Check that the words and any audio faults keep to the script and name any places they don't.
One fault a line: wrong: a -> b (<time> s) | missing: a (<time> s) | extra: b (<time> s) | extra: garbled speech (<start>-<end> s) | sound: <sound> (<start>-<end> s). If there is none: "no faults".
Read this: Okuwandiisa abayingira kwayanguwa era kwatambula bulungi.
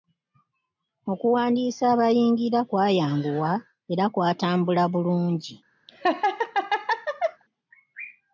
sound: laugh (5.9-7.4 s)